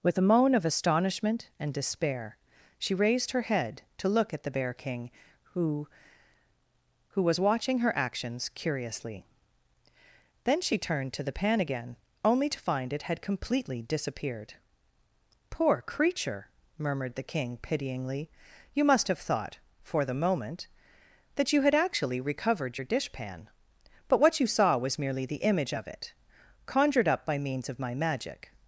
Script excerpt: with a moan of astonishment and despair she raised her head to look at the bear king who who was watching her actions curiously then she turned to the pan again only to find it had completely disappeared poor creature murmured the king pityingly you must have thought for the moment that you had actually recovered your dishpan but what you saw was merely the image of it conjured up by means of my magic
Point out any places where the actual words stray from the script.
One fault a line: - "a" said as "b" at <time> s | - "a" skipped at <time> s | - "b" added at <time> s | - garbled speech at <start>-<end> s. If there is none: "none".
none